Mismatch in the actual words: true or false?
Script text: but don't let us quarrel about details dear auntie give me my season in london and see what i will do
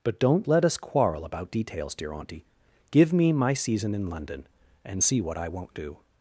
true